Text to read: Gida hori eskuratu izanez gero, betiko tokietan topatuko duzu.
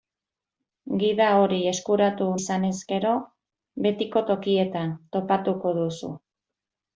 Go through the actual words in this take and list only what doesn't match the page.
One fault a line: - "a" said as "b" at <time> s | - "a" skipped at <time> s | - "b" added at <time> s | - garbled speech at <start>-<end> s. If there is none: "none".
none